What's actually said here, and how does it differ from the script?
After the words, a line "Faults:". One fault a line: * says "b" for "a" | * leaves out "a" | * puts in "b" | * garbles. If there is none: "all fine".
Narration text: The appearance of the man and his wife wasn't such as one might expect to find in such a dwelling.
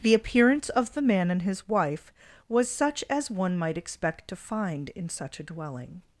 The appearance of the man and his wife was such as one might expect to find in such a dwelling.
Faults:
* says "was" for "wasn't"